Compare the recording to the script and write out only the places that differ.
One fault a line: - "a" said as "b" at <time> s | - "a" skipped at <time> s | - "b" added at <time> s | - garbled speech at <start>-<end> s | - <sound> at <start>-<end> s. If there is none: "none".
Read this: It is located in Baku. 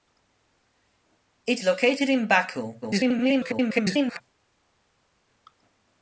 - "is" skipped at 1.6 s
- garbled speech at 2.8-4.2 s